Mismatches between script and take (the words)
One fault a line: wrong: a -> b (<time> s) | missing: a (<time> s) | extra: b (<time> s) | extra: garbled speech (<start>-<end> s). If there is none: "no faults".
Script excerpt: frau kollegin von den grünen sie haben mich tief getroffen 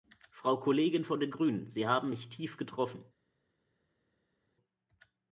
no faults